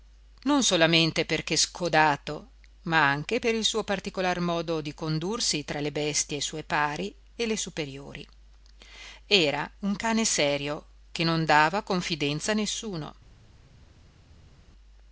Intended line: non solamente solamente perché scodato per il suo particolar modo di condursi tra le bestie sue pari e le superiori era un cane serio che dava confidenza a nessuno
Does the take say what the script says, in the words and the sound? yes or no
no